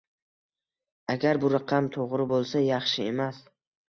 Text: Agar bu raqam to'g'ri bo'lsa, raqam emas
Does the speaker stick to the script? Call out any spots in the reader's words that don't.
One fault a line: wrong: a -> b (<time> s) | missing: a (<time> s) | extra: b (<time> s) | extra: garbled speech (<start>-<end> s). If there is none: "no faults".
wrong: raqam -> yaxshi (2.7 s)